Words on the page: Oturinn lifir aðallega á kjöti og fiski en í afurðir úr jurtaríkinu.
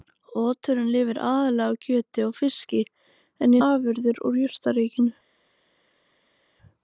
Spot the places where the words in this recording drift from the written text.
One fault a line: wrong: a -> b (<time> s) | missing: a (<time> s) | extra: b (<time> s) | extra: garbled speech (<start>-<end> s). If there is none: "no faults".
no faults